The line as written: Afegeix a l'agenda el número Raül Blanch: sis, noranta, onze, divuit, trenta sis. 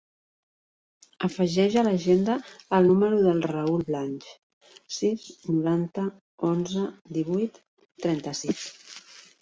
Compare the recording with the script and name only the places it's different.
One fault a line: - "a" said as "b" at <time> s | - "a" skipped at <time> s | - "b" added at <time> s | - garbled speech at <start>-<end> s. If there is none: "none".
- "del" added at 3.3 s